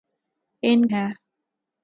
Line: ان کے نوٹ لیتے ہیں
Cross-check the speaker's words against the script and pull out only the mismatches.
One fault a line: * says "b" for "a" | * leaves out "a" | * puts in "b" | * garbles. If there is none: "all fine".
* leaves out "کے نوٹ لیتے"